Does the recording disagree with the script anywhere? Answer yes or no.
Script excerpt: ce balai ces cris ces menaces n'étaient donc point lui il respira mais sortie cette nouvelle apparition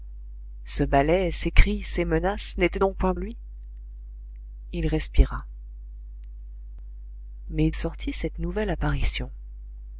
no